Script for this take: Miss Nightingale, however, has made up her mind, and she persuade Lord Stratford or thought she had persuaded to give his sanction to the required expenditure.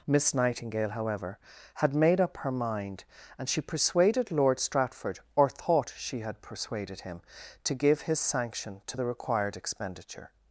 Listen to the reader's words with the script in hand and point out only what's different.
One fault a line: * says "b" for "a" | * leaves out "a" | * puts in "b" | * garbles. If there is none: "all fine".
* says "had" for "has"
* says "persuaded" for "persuade"
* puts in "him"